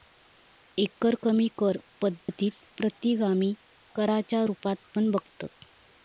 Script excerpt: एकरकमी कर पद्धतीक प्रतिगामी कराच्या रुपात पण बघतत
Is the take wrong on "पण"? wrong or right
right